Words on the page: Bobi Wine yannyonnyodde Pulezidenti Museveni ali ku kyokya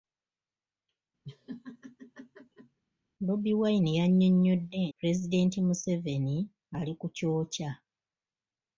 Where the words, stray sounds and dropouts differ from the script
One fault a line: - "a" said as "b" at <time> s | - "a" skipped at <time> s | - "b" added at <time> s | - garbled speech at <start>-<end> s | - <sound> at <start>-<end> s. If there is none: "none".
- laugh at 1.2-2.8 s